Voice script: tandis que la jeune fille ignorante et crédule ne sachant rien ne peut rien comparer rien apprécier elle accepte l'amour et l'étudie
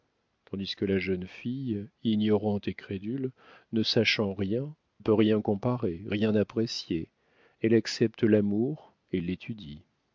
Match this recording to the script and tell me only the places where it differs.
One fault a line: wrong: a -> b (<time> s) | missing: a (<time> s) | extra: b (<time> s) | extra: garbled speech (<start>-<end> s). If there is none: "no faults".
missing: ne (4.7 s)